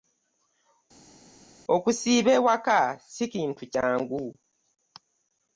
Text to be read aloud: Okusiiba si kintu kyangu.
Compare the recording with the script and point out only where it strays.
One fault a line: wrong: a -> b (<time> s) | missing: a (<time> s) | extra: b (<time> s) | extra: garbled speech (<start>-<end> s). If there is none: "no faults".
extra: ewaka (2.4 s)